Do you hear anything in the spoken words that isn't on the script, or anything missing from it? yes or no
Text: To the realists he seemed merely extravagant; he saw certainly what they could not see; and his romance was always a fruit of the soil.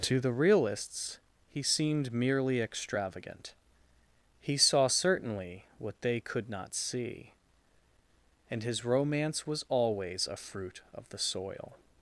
no